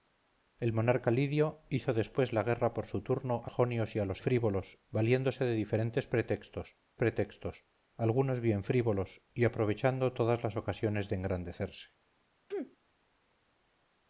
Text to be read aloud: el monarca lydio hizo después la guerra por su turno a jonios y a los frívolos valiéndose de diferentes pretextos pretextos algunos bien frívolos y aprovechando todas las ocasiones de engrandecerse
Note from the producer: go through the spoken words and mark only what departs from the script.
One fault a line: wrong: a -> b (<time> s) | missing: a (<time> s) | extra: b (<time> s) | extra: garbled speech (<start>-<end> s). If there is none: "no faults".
no faults